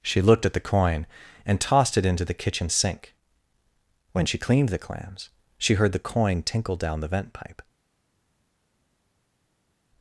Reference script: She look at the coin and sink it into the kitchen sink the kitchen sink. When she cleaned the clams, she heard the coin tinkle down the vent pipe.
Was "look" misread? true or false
true